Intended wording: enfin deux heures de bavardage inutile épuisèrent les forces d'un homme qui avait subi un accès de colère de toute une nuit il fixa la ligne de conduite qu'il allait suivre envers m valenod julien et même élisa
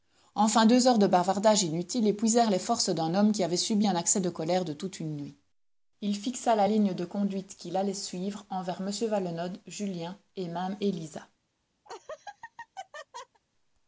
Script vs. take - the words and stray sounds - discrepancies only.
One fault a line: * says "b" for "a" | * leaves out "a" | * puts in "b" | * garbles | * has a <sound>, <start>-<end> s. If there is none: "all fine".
* has a laugh, 11.8-13.4 s